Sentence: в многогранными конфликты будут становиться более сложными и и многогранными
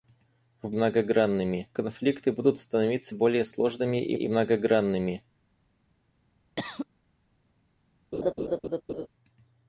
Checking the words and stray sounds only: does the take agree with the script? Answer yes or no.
no